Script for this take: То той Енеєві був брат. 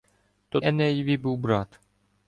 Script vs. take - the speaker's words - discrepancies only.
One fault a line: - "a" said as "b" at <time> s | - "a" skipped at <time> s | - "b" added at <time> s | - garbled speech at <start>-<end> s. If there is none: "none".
- "той" skipped at 0.6 s